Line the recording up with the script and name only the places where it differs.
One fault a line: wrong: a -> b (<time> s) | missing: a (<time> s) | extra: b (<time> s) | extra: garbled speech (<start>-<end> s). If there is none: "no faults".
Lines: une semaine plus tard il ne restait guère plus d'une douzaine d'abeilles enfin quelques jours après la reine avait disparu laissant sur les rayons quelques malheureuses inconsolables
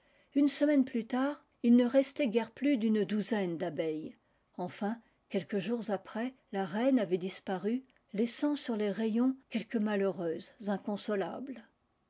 no faults